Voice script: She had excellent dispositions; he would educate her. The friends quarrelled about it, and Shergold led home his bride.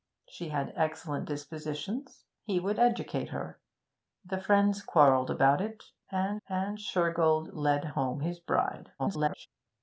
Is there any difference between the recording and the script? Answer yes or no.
yes